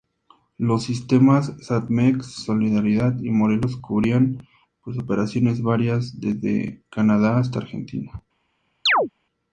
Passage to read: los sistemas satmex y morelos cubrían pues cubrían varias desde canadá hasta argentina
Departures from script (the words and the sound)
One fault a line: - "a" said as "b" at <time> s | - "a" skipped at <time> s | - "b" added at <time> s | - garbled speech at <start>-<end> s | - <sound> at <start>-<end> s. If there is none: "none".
- "solidaridad" added at 2.2 s
- "cubrían" said as "operaciones" at 5.0 s
- chirp at 8.9-9.1 s